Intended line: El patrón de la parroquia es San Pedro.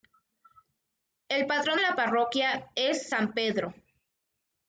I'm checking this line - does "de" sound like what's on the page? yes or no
no